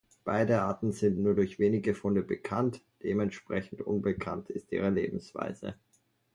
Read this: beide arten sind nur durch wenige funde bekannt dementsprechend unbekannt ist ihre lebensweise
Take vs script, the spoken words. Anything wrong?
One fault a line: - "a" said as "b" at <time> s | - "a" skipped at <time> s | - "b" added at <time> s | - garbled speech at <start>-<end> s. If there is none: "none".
none